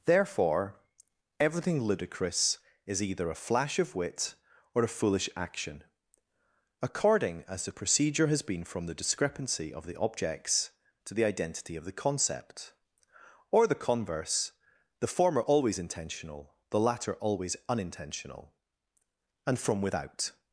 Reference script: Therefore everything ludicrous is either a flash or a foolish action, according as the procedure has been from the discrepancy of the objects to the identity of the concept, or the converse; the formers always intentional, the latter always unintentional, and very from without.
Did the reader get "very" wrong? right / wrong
wrong